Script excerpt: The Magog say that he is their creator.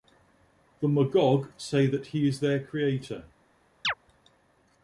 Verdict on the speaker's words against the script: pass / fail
pass